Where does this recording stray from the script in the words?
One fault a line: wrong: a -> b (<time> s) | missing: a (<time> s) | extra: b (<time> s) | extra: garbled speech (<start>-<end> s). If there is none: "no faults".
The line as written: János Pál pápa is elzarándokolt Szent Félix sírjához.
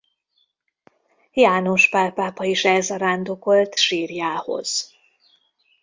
missing: Szent Félix (3.8 s)